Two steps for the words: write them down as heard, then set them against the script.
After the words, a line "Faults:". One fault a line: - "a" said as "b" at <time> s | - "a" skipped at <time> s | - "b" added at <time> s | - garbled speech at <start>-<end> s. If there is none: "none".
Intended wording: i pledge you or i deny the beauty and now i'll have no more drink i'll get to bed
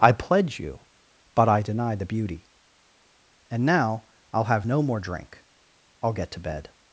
i pledge you but i deny the beauty and now i'll have no more drink i'll get to bed
Faults:
- "or" said as "but" at 1.4 s